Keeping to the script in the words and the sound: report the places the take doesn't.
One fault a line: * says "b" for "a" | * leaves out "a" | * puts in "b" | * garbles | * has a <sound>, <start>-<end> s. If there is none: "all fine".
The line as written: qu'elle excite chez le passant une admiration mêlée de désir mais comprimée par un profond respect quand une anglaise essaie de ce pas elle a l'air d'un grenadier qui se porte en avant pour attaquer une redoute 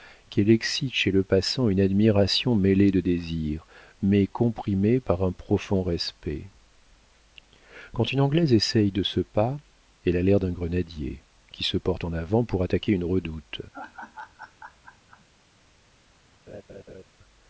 * has a laugh, 13.7-15.2 s
* has a laugh, 16.5-17.0 s